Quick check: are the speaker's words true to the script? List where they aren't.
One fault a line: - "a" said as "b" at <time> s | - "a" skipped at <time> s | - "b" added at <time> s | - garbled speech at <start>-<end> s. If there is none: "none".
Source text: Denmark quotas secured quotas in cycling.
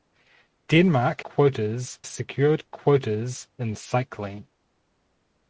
none